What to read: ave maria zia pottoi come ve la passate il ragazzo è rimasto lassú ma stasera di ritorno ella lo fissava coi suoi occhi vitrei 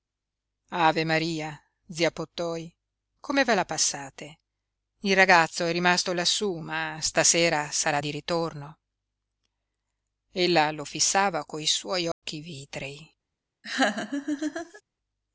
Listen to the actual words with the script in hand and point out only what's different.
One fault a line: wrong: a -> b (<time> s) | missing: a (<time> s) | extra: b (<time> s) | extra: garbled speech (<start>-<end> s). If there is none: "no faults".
extra: sarà (7.7 s)